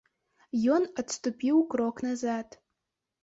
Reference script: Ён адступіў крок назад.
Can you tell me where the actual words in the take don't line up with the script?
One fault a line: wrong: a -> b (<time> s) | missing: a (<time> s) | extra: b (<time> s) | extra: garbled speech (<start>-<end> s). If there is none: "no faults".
no faults